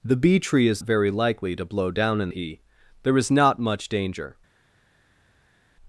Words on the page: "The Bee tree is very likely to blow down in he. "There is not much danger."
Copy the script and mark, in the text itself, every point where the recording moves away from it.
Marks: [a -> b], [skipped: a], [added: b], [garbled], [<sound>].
"The Bee tree is very likely to blow down in he. "There is not much danger."